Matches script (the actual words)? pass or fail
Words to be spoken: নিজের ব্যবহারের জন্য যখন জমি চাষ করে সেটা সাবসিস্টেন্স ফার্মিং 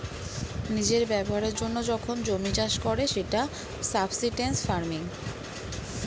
pass